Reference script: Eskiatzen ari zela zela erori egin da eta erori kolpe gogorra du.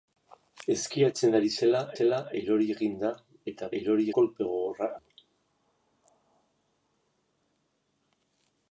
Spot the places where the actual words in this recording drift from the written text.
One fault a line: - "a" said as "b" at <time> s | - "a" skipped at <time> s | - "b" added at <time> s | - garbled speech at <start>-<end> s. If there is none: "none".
none